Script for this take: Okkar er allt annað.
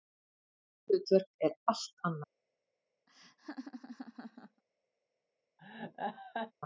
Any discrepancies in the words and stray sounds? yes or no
yes